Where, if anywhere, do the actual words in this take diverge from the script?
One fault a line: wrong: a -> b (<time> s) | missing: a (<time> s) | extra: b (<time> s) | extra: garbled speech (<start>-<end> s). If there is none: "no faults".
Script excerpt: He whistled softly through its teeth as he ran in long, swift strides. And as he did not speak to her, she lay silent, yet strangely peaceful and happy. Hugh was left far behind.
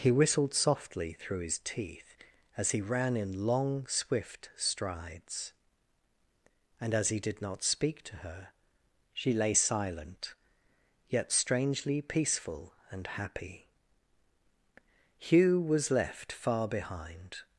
wrong: its -> his (1.4 s)